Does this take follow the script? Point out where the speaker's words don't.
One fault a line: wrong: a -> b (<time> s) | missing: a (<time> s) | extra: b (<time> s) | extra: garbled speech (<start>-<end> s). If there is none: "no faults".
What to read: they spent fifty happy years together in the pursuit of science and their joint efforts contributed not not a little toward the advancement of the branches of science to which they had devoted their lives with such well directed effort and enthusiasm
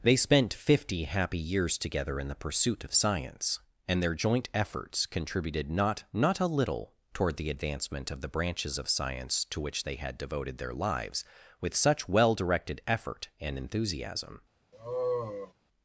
no faults